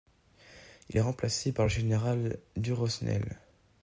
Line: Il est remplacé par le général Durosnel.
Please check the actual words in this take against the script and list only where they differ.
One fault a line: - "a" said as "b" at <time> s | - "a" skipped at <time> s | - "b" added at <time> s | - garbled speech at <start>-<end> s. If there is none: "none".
none